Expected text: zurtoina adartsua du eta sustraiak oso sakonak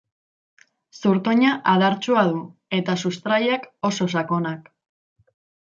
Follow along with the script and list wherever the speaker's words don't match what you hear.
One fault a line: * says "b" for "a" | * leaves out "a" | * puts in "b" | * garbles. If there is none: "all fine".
all fine